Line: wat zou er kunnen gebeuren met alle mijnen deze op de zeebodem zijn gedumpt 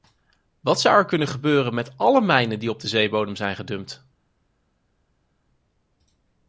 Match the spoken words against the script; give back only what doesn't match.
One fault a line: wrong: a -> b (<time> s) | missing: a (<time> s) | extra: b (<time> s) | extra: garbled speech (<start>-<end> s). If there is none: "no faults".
wrong: deze -> die (2.6 s)